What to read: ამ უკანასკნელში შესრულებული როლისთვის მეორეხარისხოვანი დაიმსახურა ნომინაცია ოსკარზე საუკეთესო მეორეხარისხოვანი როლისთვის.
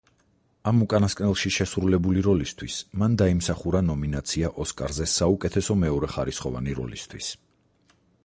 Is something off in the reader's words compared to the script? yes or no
yes